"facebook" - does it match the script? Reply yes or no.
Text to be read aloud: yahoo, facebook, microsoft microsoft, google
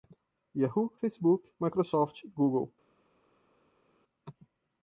yes